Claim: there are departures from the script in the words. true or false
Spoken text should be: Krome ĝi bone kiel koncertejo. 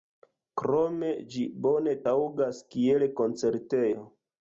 true